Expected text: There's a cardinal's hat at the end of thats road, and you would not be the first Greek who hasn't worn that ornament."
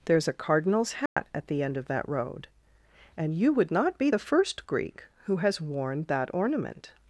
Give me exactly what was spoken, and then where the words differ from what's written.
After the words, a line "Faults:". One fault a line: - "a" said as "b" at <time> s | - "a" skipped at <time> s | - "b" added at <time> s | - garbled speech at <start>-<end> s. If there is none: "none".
There's a cardinal's hat at the end of that road, and you would not be the first Greek who has worn that ornament."
Faults:
- "thats" said as "that" at 1.9 s
- "hasn't" said as "has" at 5.4 s